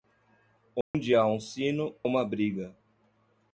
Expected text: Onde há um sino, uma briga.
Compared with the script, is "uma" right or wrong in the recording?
right